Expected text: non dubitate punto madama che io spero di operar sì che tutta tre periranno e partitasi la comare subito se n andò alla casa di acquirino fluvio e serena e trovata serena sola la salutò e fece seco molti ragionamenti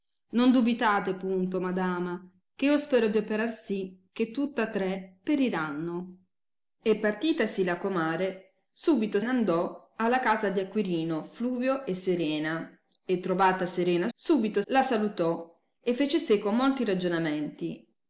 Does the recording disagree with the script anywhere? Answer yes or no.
yes